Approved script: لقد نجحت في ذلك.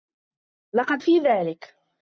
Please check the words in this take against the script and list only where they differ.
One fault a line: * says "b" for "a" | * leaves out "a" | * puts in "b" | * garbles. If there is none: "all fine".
* leaves out "نجحت"